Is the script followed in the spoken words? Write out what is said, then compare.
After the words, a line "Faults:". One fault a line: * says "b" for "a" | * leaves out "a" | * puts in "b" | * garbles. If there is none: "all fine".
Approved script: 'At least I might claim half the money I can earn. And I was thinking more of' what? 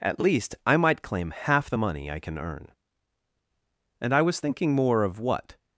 'At least I might claim half the money I can earn. And I was thinking more of' what?
Faults:
all fine